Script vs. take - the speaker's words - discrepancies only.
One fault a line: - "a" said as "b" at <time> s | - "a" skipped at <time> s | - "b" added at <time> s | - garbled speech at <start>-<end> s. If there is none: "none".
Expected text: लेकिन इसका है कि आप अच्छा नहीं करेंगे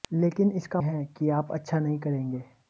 none